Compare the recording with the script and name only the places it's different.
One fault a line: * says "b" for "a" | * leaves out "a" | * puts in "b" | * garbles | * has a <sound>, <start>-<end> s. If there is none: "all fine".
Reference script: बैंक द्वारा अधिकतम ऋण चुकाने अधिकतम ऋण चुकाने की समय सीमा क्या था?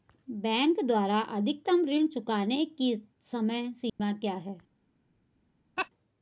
* leaves out "अधिकतम ऋण चुकाने"
* has a dropout, 3.9-4.0 s
* says "है" for "था"
* has a laugh, 5.8-5.9 s